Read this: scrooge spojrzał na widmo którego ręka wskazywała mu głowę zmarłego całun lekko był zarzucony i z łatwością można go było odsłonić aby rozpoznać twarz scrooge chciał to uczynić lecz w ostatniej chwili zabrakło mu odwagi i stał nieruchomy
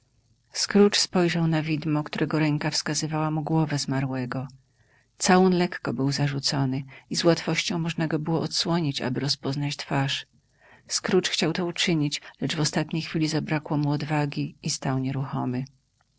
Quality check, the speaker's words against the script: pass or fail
pass